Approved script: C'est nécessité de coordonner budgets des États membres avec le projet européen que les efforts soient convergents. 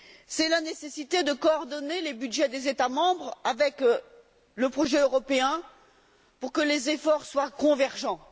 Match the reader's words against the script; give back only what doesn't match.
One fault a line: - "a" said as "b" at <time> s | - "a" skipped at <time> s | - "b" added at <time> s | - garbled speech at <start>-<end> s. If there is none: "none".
- "la" added at 0.5 s
- "les" added at 2.0 s
- "pour" added at 6.4 s